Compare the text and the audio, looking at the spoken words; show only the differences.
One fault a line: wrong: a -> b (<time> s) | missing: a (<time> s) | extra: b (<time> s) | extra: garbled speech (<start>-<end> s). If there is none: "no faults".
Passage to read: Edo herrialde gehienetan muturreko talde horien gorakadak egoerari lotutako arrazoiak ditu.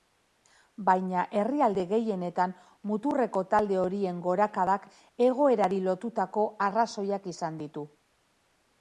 wrong: Edo -> Baina (0.8 s)
extra: izan (7.4 s)